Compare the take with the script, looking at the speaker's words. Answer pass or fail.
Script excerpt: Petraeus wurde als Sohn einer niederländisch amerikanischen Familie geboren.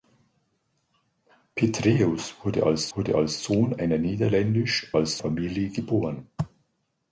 fail